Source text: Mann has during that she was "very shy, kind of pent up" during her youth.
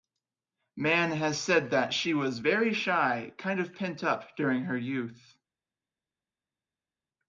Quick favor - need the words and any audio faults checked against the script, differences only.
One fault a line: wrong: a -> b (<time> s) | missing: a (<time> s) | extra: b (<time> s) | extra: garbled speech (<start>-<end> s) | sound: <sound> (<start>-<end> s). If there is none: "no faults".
wrong: during -> said (1.4 s)